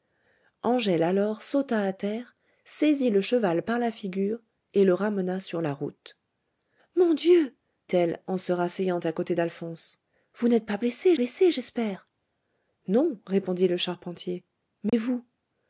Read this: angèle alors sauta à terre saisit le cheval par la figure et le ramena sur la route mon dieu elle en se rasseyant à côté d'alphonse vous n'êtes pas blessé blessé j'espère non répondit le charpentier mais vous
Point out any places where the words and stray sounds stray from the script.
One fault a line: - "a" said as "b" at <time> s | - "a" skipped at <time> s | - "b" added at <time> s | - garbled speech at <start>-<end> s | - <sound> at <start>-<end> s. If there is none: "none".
- dropout at 14.9-14.9 s